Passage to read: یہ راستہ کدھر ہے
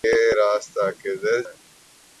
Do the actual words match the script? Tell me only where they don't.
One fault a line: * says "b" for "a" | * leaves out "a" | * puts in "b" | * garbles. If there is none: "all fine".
all fine